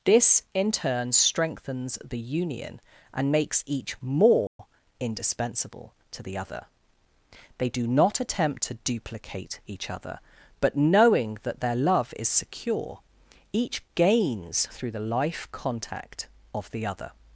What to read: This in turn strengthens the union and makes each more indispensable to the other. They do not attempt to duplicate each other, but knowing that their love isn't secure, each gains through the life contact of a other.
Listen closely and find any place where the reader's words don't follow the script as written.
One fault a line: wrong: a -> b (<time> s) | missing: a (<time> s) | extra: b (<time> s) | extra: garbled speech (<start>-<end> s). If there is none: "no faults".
wrong: isn't -> is (12.2 s)
wrong: a -> the (16.7 s)